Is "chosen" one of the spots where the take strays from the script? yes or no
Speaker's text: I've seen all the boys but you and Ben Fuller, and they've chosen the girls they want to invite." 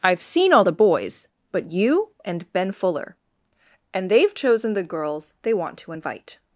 no